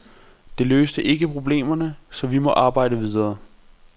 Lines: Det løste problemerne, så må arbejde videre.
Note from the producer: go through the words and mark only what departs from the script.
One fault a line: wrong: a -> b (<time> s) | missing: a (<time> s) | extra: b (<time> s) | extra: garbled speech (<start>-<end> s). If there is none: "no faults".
extra: ikke (1.0 s)
extra: vi (2.3 s)